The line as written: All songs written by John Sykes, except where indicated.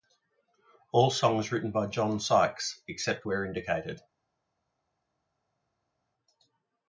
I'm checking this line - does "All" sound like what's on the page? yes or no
yes